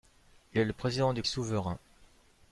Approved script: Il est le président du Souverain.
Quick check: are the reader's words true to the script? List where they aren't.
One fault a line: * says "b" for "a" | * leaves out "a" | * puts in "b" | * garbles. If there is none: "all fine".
all fine